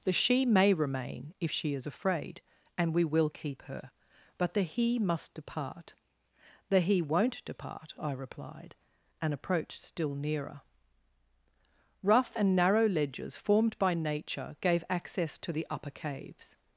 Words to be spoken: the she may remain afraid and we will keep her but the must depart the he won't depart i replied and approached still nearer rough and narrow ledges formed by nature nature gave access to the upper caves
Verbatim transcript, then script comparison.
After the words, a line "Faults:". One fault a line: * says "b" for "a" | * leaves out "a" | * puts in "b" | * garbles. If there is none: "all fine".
the she may remain if she is afraid and we will keep her but the he must depart the he won't depart i replied and approached still nearer rough and narrow ledges formed by nature gave access to the upper caves
Faults:
* puts in "if she is"
* puts in "he"
* leaves out "nature"